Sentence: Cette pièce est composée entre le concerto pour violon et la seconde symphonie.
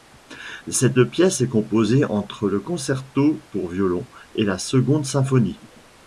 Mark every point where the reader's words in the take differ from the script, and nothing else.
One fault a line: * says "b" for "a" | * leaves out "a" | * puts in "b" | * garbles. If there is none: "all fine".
all fine